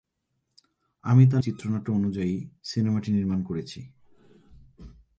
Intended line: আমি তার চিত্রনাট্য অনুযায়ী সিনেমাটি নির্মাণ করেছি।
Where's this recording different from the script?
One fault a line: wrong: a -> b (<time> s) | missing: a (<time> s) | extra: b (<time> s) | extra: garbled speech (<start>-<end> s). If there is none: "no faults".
no faults